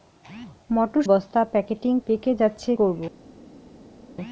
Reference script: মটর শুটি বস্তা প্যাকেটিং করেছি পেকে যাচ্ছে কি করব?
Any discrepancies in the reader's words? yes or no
yes